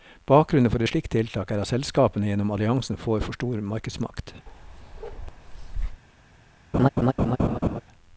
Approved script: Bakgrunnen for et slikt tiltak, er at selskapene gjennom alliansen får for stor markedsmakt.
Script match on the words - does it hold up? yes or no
yes